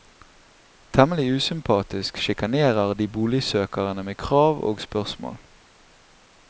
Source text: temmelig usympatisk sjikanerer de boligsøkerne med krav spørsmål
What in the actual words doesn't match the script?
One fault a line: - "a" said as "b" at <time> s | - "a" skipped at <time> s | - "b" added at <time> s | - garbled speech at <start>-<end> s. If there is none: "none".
- "og" added at 4.6 s